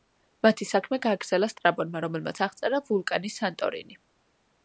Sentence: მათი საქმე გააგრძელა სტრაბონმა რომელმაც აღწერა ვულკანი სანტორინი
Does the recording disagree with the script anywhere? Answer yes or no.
no